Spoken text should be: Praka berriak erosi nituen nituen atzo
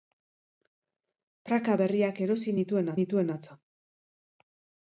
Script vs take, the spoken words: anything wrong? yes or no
no